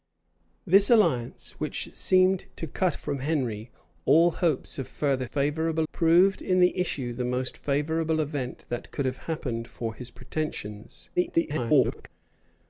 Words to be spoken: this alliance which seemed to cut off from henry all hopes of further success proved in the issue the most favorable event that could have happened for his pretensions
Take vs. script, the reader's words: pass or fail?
fail